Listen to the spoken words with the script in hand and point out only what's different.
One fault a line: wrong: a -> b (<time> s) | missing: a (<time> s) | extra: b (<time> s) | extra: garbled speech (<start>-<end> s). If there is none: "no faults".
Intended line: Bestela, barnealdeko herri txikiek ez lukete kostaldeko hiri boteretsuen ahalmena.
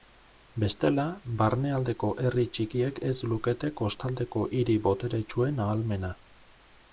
no faults